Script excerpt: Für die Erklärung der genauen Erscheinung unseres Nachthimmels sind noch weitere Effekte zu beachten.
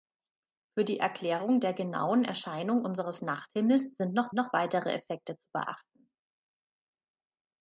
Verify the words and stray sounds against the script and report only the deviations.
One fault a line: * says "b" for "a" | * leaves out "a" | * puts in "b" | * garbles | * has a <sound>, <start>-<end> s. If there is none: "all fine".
* puts in "noch"